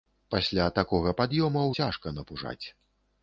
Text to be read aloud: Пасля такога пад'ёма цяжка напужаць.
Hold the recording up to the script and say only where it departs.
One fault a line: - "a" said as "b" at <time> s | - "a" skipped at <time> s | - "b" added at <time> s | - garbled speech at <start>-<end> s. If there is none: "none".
none